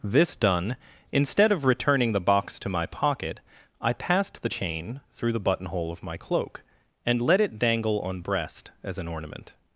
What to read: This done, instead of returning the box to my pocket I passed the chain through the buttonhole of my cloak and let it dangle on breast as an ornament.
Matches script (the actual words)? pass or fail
pass